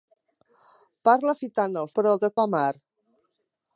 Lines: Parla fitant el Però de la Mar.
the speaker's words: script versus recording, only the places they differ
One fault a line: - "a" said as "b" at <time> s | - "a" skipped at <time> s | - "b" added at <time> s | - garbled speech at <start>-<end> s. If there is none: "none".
none